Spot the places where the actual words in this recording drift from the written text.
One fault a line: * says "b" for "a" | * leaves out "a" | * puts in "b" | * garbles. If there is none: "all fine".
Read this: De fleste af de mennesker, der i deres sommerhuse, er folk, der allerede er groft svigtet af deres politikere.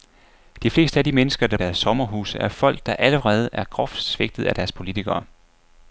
all fine